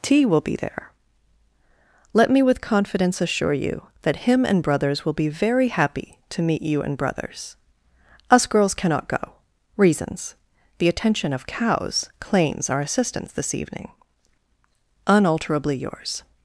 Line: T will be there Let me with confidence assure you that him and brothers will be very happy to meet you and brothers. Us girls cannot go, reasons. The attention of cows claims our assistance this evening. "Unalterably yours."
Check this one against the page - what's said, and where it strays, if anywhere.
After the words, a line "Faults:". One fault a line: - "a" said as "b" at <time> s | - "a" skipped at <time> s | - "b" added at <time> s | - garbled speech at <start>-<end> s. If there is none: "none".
T will be there Let me with confidence assure you that him and brothers will be very happy to meet you and brothers. Us girls cannot go, reasons. The attention of cows claims our assistance this evening. "Unalterably yours."
Faults:
none